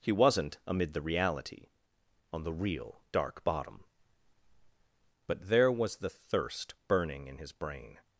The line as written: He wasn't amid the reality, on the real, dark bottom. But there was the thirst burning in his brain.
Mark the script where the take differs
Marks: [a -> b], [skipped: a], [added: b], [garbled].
He wasn't amid the reality, on the real, dark bottom. But there was the thirst burning in his brain.